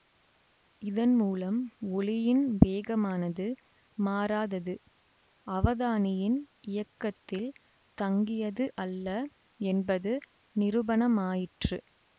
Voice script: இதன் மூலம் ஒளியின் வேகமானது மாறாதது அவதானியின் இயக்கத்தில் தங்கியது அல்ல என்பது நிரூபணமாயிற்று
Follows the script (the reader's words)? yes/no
yes